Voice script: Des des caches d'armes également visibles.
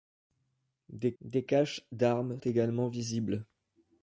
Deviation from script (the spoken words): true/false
false